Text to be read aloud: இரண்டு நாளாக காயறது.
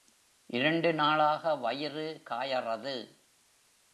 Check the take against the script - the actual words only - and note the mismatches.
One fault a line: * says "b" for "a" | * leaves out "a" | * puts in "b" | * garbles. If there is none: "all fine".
* puts in "வயிறு"